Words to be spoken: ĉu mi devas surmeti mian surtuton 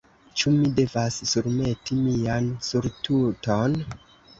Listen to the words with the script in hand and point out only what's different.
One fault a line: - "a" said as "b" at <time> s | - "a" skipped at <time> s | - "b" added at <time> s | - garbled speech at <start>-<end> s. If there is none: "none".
none